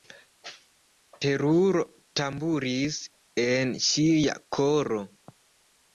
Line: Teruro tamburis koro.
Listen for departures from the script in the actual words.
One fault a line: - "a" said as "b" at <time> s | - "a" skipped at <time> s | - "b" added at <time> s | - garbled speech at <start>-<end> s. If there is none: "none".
- "en ŝia" added at 3.5 s